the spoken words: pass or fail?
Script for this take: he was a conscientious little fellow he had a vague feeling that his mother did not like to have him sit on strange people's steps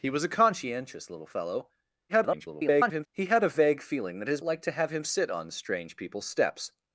fail